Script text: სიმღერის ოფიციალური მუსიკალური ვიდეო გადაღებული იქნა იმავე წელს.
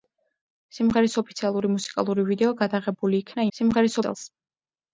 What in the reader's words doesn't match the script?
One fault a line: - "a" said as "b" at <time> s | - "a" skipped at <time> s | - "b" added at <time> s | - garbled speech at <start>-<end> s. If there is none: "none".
- "იმავე" said as "სიმღერის" at 3.6 s